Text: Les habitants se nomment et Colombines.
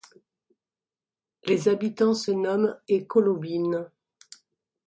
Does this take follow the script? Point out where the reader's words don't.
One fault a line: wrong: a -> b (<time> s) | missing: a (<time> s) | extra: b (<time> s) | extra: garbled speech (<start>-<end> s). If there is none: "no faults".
no faults